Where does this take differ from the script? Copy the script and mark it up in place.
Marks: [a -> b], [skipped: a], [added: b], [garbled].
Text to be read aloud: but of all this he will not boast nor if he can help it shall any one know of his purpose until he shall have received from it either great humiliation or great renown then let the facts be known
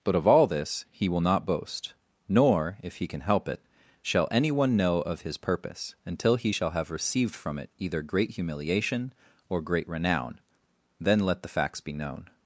but of all this he will not boast nor if he can help it shall any one know of his purpose until he shall have received from it either great humiliation or great renown then let the facts be known